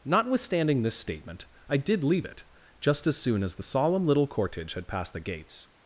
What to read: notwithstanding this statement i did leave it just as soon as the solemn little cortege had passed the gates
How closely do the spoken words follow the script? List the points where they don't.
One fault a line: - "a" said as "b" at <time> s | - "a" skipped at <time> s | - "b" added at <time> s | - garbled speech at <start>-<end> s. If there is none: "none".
none